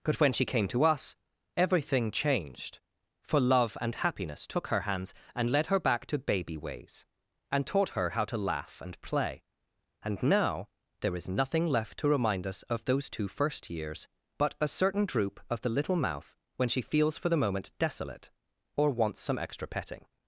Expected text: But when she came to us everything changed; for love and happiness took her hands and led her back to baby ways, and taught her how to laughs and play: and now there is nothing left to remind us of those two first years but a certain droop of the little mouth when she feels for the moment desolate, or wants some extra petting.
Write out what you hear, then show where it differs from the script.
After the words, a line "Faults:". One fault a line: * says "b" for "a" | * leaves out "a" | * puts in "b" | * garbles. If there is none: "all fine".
But when she came to us everything changed; for love and happiness took her hands and led her back to baby ways, and taught her how to laugh and play: and now there is nothing left to remind us of those two first years but a certain droop of the little mouth when she feels for the moment desolate, or wants some extra petting.
Faults:
* says "laugh" for "laughs"